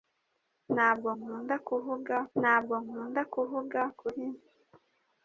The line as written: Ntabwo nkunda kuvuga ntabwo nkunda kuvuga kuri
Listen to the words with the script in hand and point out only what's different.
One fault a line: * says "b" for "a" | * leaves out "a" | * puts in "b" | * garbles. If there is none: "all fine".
all fine